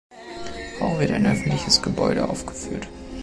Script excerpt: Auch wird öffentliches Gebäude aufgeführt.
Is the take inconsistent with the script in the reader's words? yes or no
yes